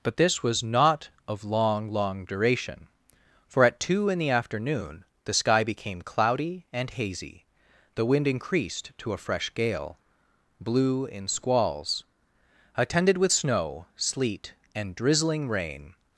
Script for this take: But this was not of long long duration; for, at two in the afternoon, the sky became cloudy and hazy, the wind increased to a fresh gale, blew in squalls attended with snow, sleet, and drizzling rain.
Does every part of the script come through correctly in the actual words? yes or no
yes